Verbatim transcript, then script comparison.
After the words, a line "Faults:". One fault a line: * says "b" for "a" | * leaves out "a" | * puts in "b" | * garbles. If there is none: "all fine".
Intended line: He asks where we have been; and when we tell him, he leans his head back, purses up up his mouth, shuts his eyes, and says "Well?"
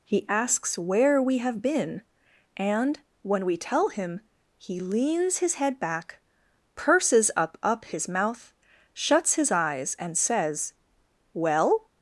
He asks where we have been; and when we tell him, he leans his head back, purses up up his mouth, shuts his eyes, and says "Well?"
Faults:
all fine